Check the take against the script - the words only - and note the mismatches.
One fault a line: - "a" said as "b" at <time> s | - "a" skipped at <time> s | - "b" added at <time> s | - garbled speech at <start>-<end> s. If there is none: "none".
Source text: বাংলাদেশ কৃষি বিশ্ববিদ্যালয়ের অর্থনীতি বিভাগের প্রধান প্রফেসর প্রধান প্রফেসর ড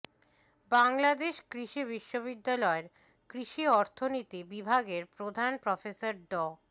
- "কৃষি" added at 3.3 s
- "প্রধান প্রফেসর" skipped at 6.1 s